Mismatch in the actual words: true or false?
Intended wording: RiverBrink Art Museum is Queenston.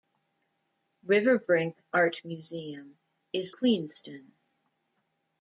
false